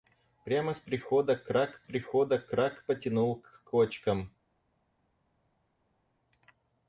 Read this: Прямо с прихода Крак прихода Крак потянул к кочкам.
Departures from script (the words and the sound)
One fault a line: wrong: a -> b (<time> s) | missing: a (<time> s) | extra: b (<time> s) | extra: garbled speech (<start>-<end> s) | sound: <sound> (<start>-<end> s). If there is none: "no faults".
no faults